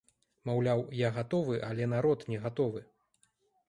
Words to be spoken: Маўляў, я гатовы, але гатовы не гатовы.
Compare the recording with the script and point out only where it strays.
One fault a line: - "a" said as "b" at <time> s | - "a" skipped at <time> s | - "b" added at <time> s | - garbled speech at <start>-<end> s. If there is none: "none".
- "гатовы" said as "народ" at 2.0 s